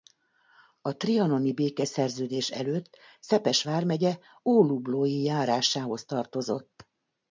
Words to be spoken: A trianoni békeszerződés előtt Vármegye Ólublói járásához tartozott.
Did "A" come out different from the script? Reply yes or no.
no